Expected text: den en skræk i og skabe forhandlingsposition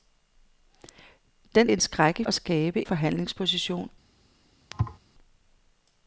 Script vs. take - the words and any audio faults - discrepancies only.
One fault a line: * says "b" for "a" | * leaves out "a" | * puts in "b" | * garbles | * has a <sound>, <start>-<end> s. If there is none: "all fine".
* has a thud, 4.7-5.0 s